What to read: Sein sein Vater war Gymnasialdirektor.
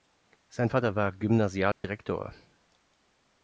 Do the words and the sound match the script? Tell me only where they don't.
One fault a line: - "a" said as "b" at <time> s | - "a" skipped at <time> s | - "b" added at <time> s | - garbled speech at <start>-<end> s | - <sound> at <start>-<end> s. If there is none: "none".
- "sein" skipped at 0.7 s
- dropout at 1.7-1.8 s